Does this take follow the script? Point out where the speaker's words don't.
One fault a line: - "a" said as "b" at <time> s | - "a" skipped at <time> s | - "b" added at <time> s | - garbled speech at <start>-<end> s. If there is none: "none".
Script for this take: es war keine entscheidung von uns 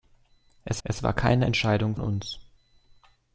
- "es" added at 0.8 s
- "von" skipped at 1.9 s